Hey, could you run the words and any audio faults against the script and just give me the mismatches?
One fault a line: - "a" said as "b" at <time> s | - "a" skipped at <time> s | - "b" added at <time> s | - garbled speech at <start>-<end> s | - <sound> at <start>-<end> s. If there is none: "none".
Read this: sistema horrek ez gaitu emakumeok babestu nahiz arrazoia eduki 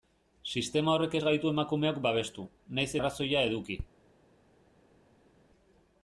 none